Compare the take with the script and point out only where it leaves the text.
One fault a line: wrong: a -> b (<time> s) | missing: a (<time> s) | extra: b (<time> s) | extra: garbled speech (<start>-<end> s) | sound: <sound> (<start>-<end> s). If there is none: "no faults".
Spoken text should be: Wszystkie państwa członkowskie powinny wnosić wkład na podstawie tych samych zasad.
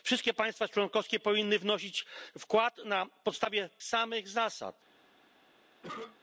missing: tych (3.7 s)
sound: cough (5.8-6.2 s)